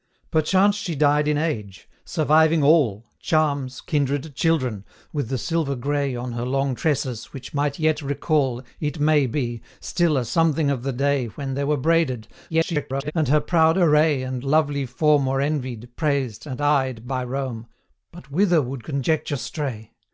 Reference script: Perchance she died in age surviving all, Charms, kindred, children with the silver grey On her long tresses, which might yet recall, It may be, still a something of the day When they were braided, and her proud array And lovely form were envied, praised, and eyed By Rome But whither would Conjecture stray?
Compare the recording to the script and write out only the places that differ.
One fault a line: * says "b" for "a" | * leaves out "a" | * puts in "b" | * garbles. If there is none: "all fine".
* garbles